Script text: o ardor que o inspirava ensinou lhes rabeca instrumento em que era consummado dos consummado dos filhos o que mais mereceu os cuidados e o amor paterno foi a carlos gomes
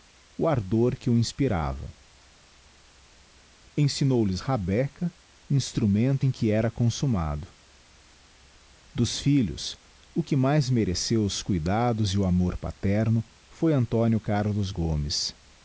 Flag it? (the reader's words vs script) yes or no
yes